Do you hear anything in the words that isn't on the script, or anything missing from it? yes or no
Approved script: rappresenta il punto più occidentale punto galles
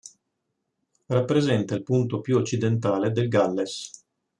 yes